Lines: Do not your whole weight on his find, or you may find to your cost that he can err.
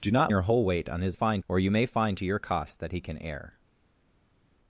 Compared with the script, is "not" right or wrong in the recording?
right